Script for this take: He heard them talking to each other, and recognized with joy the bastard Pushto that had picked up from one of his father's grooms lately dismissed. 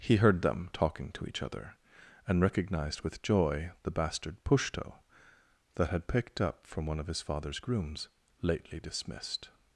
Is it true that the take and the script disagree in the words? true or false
false